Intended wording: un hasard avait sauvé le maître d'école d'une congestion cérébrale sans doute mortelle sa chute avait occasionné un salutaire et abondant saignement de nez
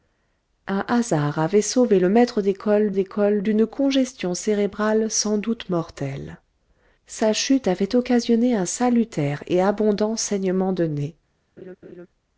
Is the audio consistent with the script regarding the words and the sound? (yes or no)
no